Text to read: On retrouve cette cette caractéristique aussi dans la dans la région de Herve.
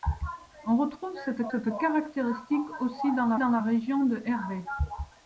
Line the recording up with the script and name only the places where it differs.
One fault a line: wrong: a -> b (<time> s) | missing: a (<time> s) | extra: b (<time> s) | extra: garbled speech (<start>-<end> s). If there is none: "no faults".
no faults